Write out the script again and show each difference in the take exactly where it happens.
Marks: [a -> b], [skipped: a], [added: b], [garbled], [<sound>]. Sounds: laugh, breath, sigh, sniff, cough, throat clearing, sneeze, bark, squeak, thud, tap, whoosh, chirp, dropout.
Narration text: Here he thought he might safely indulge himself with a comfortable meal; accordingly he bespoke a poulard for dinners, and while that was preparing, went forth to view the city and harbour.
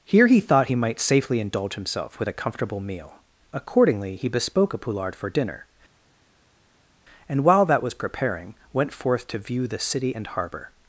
Here he thought he might safely indulge himself with a comfortable meal; accordingly he bespoke a poulard for [dinners, -> dinner] and while that was preparing, went forth to view the city and harbour.